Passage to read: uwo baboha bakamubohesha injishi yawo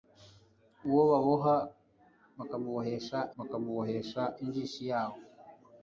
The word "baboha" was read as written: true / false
true